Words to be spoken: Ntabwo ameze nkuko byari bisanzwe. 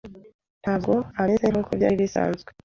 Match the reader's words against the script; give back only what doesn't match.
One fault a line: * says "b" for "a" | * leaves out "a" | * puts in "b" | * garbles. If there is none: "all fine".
all fine